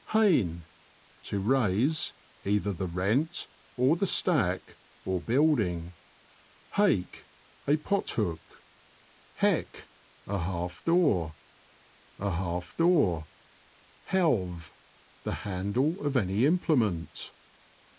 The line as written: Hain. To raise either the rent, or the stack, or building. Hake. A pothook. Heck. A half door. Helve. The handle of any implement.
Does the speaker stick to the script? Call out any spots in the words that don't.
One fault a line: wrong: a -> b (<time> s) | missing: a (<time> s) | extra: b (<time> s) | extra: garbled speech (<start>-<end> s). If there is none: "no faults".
extra: a half door (12.2 s)